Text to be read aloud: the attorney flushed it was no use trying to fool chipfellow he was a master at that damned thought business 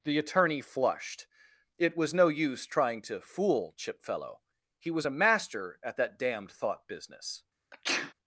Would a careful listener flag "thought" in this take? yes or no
no